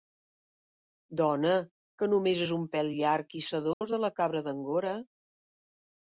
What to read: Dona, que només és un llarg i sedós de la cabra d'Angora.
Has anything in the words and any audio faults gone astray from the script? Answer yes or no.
yes